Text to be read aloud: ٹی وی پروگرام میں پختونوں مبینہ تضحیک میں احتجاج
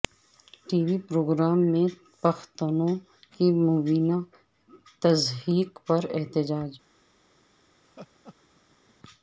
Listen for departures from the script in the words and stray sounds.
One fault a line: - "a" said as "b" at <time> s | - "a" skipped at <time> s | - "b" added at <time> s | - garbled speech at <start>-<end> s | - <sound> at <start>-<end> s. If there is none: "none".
- "کی" added at 3.3 s
- "میں" said as "پر" at 5.9 s
- laugh at 7.8-9.0 s